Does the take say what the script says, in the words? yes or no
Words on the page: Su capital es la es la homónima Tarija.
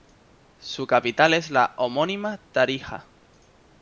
no